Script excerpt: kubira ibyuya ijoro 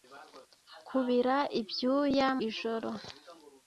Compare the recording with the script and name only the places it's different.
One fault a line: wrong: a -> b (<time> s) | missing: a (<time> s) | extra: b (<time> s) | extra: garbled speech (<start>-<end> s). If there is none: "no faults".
no faults